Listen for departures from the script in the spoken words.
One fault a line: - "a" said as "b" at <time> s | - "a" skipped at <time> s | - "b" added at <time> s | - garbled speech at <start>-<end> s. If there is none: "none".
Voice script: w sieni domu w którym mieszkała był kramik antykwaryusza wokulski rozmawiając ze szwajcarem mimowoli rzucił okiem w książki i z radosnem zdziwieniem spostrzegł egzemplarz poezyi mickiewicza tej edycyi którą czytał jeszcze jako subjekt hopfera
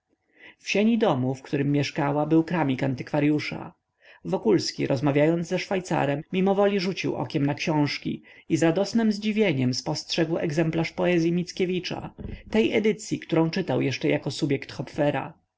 - "w" said as "na" at 7.4 s